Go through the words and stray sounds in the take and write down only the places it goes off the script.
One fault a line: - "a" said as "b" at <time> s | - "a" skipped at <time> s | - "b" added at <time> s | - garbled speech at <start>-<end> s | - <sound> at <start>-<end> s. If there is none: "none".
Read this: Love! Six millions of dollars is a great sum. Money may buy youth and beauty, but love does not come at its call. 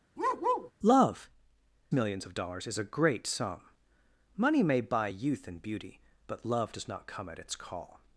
- bark at 0.2-0.7 s
- "Six" skipped at 1.3 s